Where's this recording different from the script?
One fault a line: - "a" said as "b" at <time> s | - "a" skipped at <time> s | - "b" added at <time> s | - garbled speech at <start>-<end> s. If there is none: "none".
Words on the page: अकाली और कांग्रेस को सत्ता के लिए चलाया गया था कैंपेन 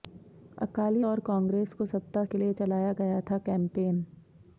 none